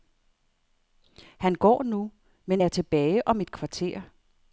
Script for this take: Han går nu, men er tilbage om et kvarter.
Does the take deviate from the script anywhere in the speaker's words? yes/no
no